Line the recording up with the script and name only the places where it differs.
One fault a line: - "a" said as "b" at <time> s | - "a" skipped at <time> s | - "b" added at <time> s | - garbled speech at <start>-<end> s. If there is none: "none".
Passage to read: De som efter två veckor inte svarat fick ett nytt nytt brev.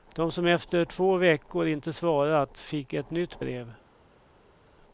- "nytt" skipped at 3.4 s